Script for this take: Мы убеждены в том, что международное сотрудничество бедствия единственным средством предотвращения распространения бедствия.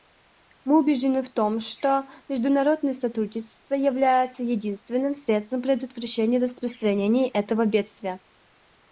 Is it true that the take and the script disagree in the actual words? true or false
true